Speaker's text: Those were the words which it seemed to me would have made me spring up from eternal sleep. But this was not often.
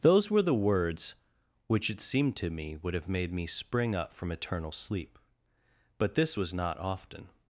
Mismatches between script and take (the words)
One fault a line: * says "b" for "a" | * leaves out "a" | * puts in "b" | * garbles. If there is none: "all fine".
all fine